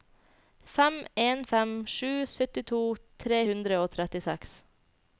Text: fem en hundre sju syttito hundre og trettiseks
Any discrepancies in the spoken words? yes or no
yes